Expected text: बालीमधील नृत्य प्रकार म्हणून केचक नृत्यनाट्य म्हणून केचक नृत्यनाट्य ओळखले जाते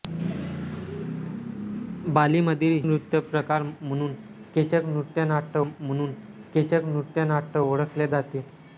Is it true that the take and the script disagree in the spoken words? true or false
false